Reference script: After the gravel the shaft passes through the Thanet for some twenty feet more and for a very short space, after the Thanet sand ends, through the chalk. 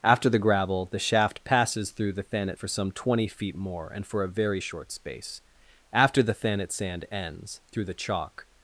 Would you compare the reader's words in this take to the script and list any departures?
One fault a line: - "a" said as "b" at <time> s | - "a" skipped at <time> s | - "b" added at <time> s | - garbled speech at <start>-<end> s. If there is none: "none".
none